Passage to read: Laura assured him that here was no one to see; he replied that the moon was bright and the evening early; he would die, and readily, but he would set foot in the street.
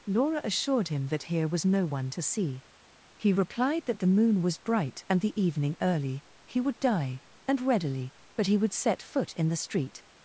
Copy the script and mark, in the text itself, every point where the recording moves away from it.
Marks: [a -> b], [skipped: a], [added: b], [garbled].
Laura assured him that here was no one to see; he replied that the moon was bright and the evening early; he would die, and readily, but he would set foot in the street.